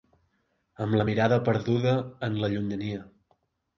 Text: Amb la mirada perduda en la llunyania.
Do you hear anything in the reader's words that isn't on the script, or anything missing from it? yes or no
no